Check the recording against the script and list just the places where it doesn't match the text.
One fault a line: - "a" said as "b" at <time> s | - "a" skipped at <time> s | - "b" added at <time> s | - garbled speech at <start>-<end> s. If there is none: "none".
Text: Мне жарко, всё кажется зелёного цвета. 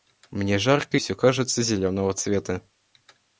none